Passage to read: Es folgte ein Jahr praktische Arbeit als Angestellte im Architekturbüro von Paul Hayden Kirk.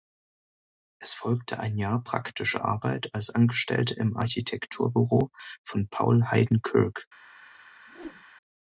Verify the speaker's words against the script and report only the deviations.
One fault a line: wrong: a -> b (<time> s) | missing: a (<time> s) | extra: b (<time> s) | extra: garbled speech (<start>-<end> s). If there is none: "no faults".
no faults